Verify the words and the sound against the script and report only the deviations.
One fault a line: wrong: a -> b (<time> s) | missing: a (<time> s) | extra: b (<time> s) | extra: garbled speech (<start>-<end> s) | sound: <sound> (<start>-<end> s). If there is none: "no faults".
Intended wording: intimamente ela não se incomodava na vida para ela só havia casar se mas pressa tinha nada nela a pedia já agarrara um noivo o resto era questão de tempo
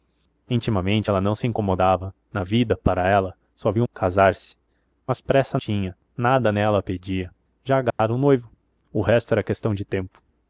sound: dropout (7.9-8.0 s)